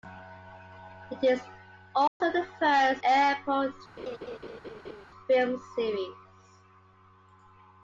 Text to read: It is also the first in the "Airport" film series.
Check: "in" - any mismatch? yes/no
yes